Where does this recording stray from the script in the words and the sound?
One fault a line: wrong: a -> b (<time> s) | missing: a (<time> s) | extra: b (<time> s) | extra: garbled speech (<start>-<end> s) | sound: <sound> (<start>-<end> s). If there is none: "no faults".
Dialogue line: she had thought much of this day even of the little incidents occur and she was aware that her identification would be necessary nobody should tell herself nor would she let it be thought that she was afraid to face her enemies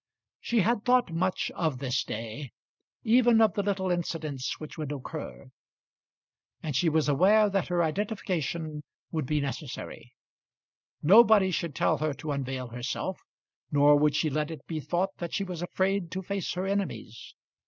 extra: which would (4.6 s)
extra: her to unveil (12.0 s)